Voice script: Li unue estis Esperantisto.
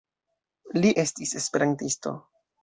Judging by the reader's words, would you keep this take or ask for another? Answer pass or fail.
fail